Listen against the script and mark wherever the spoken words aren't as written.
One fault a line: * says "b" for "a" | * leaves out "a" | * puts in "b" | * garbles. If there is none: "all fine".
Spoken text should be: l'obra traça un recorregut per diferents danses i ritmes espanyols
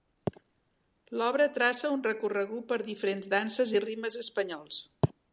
all fine